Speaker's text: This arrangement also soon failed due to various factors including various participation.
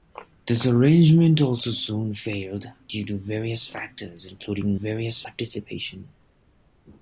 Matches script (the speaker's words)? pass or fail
pass